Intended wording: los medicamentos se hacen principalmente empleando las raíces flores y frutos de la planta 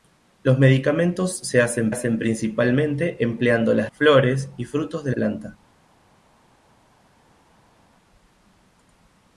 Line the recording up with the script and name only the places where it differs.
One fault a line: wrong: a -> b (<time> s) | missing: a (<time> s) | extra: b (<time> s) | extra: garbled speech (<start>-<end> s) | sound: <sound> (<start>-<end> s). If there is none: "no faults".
extra: hacen (1.9 s)
missing: raíces (3.9 s)
missing: la (5.1 s)